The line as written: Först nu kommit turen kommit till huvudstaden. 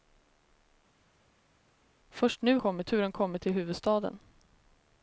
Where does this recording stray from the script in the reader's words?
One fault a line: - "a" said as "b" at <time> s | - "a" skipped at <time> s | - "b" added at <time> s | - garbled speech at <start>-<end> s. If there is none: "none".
none